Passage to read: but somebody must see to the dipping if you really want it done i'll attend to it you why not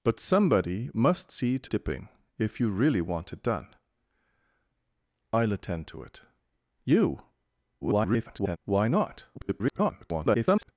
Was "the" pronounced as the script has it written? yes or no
no